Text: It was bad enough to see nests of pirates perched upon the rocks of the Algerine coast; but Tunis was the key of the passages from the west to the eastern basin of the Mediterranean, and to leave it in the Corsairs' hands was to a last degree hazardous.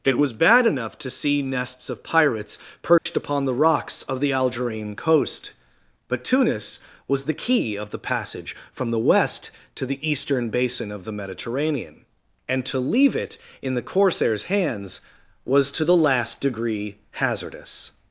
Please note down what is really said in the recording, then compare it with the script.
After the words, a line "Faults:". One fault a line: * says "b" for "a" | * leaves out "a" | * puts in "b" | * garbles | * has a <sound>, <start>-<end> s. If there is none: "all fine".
It was bad enough to see nests of pirates perched upon the rocks of the Algerine coast; but Tunis was the key of the passage from the west to the eastern basin of the Mediterranean, and to leave it in the Corsairs' hands was to the last degree hazardous.
Faults:
* has a dropout, 3.0-3.1 s
* says "passage" for "passages"
* says "the" for "a"